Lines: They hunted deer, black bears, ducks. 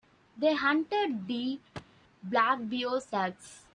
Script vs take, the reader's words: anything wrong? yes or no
no